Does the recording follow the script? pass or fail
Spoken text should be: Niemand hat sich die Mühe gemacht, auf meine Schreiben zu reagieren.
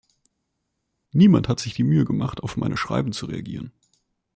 pass